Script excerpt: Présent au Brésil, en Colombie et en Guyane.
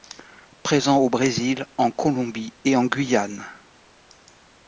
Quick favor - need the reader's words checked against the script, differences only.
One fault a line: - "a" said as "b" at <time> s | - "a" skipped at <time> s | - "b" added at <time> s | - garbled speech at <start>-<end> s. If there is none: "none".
none